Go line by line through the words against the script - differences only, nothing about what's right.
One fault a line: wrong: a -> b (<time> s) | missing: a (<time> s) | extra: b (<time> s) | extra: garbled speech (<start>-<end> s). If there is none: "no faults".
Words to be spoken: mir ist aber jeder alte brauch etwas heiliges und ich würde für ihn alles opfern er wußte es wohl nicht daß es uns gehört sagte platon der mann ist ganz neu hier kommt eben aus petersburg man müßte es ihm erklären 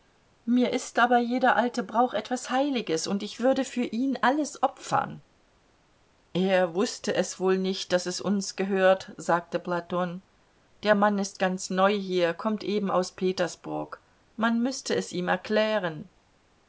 no faults